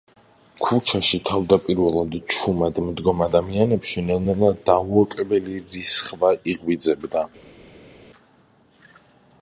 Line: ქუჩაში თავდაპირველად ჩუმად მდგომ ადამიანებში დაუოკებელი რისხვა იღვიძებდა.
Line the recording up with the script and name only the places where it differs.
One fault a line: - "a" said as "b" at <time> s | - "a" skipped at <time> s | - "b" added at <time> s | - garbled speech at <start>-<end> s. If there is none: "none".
- "ნელ ნელა" added at 4.1 s